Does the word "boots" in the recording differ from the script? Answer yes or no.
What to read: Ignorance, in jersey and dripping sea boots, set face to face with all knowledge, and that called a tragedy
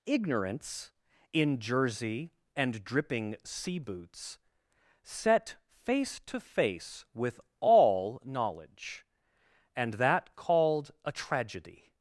no